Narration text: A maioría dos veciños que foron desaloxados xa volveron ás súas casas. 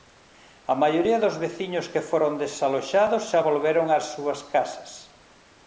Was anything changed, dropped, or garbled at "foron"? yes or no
no